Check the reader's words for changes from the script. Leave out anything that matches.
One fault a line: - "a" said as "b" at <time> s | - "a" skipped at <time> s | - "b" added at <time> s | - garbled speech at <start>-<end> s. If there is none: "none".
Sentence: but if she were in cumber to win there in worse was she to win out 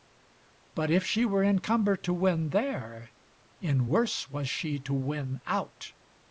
none